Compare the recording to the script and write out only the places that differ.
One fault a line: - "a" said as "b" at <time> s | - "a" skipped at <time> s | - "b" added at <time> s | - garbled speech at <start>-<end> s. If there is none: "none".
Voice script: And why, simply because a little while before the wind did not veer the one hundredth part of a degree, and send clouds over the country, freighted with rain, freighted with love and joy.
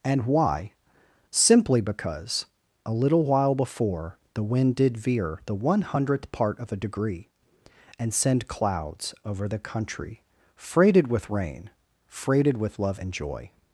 - "not" skipped at 5.0 s